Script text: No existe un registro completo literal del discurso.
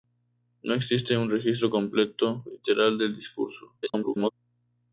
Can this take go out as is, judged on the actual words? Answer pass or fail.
fail